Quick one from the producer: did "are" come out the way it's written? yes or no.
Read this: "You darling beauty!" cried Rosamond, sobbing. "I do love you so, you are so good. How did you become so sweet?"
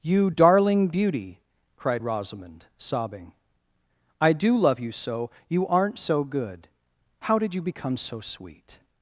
no